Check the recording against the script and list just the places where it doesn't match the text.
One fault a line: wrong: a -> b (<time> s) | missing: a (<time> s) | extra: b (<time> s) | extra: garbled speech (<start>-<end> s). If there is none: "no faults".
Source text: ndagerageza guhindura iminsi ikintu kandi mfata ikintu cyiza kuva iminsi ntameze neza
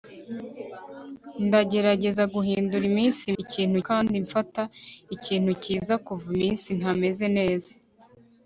no faults